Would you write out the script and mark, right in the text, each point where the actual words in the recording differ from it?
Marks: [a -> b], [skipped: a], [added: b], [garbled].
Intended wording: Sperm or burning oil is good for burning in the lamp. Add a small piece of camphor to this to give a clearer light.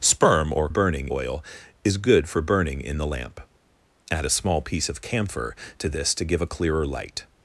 Sperm or burning oil is good for burning in the lamp. Add a small piece of camphor to this to give a clearer light.